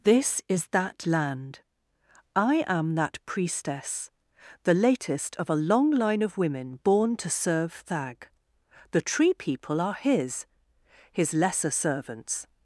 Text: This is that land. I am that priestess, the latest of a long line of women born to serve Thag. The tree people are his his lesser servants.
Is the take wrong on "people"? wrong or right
right